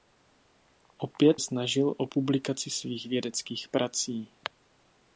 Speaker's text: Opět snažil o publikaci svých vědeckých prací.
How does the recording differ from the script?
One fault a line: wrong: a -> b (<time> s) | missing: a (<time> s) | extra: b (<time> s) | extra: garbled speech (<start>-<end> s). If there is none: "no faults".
no faults